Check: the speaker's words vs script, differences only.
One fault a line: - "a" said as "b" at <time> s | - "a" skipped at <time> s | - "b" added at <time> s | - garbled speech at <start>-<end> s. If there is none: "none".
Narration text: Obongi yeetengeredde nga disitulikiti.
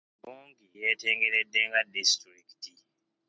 none